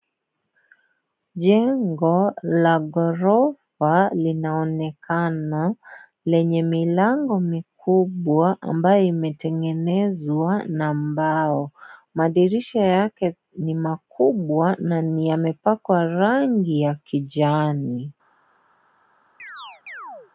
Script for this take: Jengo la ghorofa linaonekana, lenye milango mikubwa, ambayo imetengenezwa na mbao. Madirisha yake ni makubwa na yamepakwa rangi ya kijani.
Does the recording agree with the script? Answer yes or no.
yes